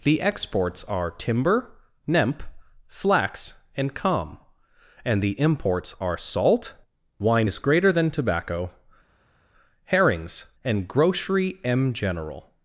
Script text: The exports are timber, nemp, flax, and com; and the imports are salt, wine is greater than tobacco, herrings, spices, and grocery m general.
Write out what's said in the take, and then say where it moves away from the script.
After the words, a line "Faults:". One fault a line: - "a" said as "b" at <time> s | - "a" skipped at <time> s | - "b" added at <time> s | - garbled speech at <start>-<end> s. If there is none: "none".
The exports are timber, nemp, flax, and com; and the imports are salt, wine is greater than tobacco, herrings, and grocery m general.
Faults:
- "spices" skipped at 10.5 s